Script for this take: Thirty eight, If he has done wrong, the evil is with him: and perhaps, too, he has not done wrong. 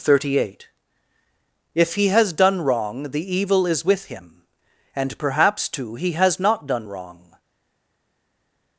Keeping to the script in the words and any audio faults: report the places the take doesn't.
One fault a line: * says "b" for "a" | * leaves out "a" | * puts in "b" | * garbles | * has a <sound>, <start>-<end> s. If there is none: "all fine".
all fine